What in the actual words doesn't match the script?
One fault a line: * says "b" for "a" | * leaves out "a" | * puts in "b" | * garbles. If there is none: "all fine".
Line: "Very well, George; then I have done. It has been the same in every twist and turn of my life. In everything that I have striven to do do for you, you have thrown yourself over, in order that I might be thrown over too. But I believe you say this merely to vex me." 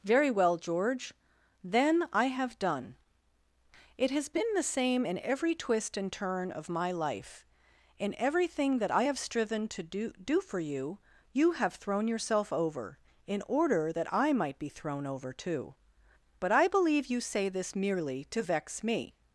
all fine